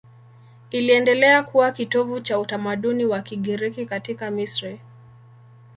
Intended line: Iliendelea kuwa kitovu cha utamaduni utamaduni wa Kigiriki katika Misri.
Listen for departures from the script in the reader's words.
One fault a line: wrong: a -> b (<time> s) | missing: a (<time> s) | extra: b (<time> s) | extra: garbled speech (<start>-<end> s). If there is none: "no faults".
missing: utamaduni (3.1 s)